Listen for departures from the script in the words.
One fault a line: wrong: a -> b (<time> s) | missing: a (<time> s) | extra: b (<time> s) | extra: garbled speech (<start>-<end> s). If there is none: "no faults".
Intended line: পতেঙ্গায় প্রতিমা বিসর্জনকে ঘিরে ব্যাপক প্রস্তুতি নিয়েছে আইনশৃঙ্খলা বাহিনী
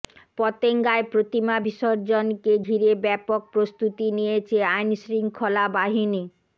no faults